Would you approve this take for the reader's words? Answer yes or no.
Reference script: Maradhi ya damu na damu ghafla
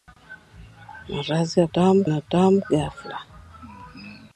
yes